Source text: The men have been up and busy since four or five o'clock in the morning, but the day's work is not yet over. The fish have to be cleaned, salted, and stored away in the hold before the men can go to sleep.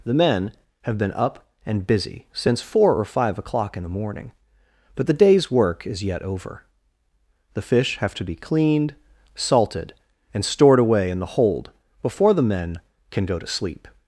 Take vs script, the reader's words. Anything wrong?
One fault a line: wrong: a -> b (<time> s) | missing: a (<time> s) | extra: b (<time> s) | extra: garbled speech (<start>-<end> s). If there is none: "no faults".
missing: not (6.0 s)